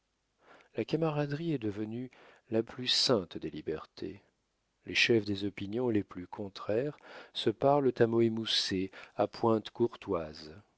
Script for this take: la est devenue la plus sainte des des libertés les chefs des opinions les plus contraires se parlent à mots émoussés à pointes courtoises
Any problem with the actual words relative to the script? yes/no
yes